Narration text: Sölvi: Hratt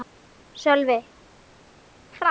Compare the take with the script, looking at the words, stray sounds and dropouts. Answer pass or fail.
pass